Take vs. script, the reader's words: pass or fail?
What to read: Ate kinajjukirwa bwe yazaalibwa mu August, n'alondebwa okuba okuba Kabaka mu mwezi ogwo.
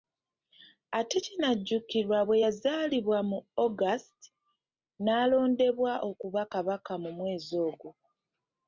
fail